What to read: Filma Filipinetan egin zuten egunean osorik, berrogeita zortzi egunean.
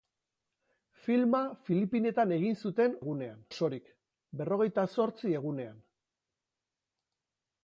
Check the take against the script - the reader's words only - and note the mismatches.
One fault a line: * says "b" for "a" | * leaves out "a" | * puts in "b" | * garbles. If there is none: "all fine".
all fine